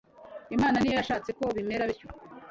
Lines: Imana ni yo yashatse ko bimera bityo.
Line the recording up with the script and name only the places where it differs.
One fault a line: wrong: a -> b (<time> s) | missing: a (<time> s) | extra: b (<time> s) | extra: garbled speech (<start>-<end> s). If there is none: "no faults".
no faults